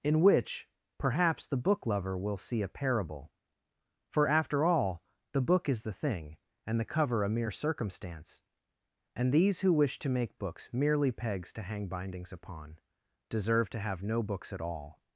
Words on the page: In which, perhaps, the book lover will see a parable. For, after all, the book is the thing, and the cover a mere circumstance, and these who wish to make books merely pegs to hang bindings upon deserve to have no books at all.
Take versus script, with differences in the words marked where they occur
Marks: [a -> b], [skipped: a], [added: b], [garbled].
In which, perhaps, the book lover will see a parable. For, after all, the book is the thing, and the cover a mere circumstance, and these who wish to make books merely pegs to hang bindings upon deserve to have no books at all.